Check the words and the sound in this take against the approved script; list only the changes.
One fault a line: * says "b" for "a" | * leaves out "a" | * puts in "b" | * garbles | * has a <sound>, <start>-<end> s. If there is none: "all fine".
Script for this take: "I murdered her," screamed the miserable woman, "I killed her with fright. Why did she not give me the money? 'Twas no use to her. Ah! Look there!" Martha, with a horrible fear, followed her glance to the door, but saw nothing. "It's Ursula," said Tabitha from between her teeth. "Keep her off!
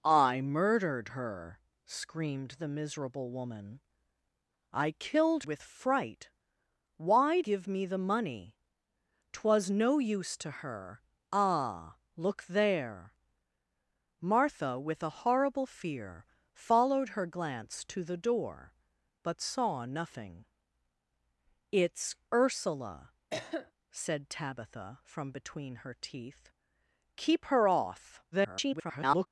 * leaves out "her"
* leaves out "did she not"
* has a cough, 23.3-23.7 s
* garbles